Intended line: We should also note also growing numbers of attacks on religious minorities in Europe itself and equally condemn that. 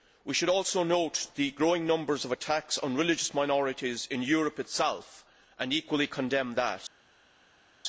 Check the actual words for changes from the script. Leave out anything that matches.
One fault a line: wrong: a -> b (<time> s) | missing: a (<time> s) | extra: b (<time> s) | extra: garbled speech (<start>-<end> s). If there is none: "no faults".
wrong: also -> the (1.4 s)